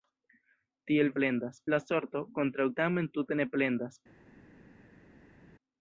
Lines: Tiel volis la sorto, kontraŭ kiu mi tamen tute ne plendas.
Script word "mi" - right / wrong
wrong